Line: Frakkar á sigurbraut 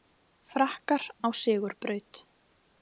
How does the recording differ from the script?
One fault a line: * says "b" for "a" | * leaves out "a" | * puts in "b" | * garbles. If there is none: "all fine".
all fine